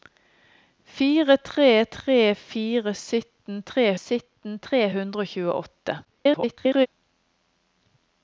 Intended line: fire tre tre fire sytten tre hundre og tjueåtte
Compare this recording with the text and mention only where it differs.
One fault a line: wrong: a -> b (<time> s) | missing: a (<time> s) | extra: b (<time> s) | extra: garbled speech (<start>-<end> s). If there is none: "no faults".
extra: sytten tre (4.0 s)
extra: garbled speech (6.0-6.9 s)